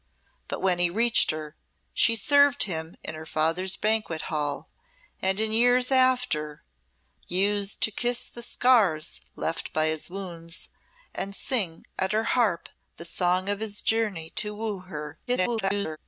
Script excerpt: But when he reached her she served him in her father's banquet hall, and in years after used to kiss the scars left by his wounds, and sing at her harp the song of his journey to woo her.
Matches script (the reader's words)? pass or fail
fail